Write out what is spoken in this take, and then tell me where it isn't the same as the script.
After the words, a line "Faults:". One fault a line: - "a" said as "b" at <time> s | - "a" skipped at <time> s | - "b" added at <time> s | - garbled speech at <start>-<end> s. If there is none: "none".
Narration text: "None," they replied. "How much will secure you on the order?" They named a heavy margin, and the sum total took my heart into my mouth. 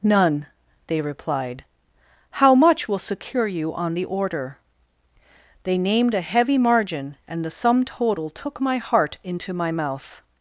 "None," they replied. "How much will secure you on the order?" They named a heavy margin, and the sum total took my heart into my mouth.
Faults:
none